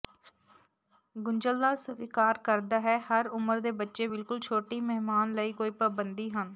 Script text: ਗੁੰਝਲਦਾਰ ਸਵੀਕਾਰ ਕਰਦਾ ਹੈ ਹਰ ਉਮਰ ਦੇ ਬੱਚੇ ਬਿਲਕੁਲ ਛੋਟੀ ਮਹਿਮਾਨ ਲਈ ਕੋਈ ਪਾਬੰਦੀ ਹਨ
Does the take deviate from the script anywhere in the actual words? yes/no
no